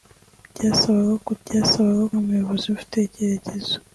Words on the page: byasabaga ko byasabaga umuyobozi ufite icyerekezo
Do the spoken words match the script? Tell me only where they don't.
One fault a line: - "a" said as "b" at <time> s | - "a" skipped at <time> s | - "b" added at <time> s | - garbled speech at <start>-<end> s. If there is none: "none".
none